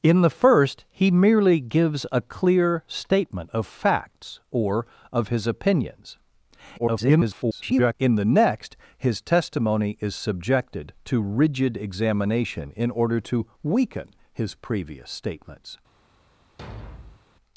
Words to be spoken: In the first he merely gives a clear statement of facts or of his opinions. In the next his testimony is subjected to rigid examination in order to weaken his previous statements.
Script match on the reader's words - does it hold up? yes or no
no